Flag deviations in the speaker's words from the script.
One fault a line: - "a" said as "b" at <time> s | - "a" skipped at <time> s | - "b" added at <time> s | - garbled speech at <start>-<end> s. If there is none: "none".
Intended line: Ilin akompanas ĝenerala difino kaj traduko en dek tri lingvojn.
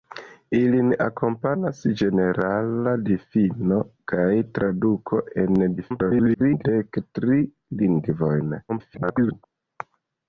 - garbled speech at 5.8-6.6 s
- garbled speech at 8.7-9.4 s